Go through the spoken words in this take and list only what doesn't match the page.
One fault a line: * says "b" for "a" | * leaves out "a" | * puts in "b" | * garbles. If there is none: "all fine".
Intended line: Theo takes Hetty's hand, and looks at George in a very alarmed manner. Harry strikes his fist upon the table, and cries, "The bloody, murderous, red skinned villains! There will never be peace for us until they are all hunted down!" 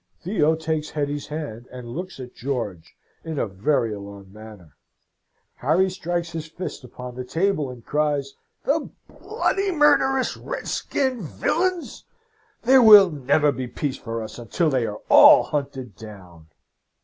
all fine